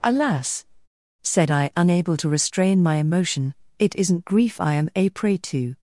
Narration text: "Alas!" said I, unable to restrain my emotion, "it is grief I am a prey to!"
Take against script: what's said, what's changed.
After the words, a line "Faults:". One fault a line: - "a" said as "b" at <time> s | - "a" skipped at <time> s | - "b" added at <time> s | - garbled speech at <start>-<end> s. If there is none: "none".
"Alas!" said I, unable to restrain my emotion, "it isn't grief I am a prey to!"
Faults:
- "is" said as "isn't" at 4.0 s